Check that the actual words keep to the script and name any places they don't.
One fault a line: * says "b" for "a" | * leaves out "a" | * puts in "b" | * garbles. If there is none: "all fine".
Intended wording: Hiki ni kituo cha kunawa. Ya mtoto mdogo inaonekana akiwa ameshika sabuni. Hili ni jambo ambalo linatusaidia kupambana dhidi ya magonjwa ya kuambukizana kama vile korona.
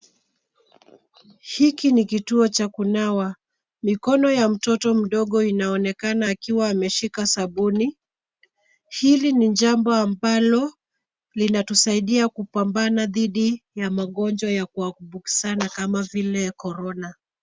* puts in "Mikono"